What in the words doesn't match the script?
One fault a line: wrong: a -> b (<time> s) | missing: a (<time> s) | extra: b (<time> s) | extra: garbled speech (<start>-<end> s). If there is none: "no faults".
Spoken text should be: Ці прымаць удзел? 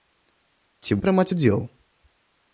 no faults